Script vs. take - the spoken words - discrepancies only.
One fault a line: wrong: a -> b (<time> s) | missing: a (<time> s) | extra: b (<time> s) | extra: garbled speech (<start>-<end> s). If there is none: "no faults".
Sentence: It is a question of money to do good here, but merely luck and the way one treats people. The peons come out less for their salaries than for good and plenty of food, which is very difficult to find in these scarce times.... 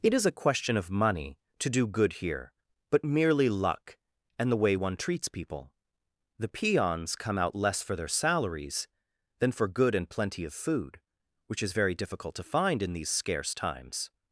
no faults